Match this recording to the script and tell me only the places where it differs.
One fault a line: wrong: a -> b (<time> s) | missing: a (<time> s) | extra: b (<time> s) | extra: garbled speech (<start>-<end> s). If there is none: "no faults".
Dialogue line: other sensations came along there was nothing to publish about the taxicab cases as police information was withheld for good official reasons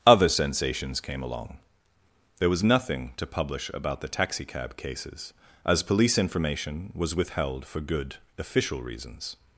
no faults